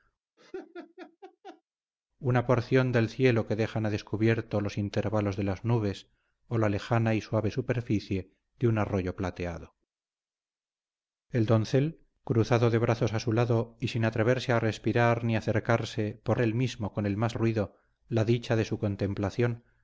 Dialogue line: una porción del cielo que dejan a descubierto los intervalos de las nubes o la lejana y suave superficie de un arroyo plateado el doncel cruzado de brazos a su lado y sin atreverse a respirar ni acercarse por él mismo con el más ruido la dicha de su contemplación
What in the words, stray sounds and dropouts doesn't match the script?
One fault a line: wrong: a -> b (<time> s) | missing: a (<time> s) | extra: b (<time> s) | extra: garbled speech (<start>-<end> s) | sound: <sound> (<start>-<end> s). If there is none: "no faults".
sound: laugh (0.4-1.6 s)